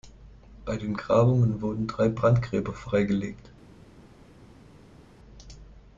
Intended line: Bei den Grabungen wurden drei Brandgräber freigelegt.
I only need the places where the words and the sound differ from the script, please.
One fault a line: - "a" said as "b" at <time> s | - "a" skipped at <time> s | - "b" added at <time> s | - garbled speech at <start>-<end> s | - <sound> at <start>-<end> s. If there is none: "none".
none